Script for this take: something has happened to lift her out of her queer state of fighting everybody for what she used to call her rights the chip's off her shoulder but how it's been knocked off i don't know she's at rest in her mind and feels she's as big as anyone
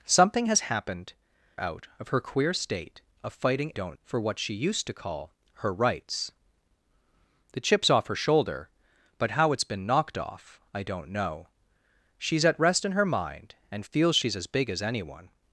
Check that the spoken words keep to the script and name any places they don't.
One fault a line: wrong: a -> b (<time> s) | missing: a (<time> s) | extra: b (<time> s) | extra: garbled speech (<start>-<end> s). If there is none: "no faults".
missing: to lift her (1.1 s)
wrong: everybody -> don't (3.7 s)